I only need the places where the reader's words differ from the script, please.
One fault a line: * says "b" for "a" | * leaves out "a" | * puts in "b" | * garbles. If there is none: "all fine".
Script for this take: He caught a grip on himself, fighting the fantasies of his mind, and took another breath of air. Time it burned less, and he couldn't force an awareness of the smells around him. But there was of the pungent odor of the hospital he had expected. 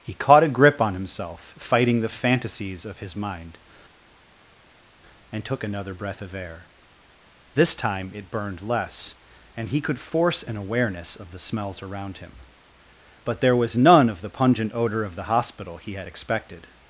* puts in "This"
* says "could" for "couldn't"
* puts in "none"